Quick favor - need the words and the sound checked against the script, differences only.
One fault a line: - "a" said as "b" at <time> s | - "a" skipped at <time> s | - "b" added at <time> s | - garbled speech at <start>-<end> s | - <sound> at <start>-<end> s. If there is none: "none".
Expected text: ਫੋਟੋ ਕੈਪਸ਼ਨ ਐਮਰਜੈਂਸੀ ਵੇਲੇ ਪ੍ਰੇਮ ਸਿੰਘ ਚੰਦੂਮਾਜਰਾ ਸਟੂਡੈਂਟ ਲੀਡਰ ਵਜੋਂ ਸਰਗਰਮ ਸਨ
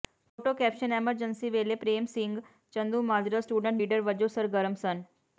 none